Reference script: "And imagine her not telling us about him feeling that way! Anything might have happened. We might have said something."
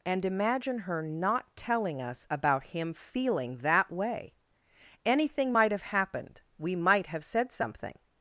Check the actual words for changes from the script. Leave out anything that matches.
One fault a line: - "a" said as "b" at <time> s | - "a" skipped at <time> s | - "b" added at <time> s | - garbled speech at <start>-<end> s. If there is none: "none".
none